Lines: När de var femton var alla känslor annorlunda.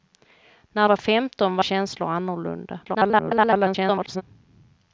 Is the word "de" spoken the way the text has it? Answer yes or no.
no